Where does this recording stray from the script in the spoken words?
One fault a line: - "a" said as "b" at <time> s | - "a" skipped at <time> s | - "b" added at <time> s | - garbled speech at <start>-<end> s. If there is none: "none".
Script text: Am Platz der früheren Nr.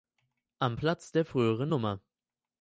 none